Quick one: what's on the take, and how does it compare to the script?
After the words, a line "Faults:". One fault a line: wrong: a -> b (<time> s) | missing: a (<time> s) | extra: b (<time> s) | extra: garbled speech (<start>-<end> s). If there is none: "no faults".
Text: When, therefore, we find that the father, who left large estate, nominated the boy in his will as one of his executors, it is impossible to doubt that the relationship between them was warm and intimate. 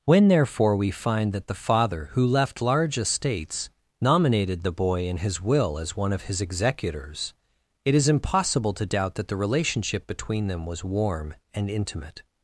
When, therefore, we find that the father, who left large estates, nominated the boy in his will as one of his executors, it is impossible to doubt that the relationship between them was warm and intimate.
Faults:
wrong: estate -> estates (3.0 s)